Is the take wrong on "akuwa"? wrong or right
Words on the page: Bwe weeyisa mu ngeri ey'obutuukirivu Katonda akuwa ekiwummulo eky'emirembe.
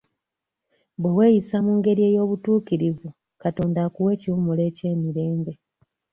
right